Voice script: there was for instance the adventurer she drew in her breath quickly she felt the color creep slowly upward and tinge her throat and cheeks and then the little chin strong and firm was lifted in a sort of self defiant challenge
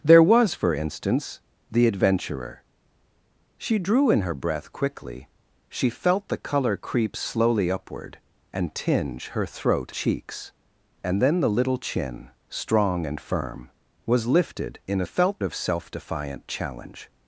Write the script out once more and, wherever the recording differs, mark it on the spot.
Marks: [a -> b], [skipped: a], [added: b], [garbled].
there was for instance the adventurer she drew in her breath quickly she felt the color creep slowly upward and tinge her throat [skipped: and] cheeks and then the little chin strong and firm was lifted in a [sort -> felt] of self defiant challenge